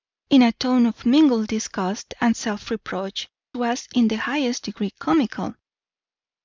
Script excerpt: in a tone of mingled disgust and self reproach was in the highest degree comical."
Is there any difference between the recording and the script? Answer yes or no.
no